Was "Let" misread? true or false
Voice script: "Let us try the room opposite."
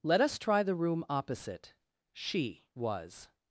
false